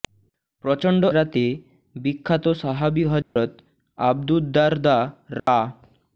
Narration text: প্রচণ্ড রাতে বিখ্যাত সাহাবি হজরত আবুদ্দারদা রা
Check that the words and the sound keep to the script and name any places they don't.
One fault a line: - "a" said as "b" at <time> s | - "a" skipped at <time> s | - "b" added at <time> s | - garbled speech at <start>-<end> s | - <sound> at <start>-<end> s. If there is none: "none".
- dropout at 3.2-3.4 s
- dropout at 5.4-5.5 s